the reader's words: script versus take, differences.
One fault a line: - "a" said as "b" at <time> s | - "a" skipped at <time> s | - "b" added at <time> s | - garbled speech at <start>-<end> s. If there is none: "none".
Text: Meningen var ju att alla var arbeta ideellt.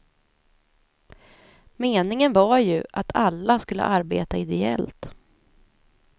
- "var" said as "skulle" at 3.6 s